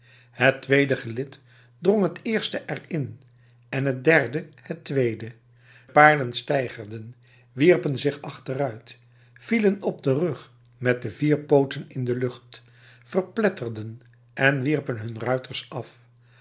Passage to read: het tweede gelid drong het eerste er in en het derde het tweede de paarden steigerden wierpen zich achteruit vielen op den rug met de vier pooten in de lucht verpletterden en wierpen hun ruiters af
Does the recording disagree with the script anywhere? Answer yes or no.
yes